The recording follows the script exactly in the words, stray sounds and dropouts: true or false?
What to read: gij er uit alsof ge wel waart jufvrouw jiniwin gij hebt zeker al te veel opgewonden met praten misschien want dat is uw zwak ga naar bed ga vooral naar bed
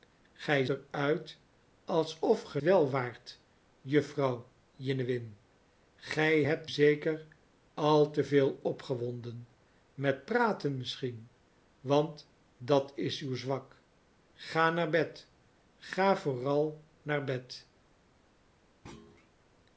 false